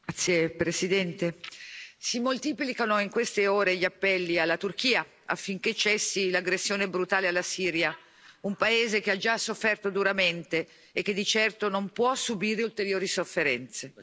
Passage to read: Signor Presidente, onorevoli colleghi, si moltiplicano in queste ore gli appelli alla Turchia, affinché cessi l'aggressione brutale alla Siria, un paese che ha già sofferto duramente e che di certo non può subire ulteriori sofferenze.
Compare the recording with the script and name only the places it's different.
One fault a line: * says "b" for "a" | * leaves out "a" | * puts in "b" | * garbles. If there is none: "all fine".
all fine